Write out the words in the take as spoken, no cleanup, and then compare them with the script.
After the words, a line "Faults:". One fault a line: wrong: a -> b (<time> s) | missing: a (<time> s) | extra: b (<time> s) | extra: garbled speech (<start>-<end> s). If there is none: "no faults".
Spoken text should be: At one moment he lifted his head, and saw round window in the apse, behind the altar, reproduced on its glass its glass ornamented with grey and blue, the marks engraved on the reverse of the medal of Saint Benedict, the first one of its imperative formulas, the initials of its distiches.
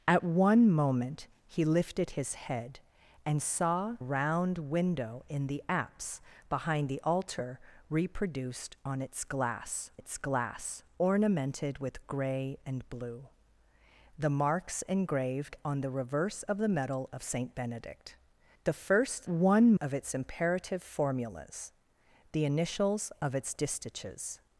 At one moment he lifted his head, and saw round window in the apse, behind the altar, reproduced on its glass its glass ornamented with grey and blue, the marks engraved on the reverse of the medal of Saint Benedict, the first one of its imperative formulas, the initials of its distiches.
Faults:
no faults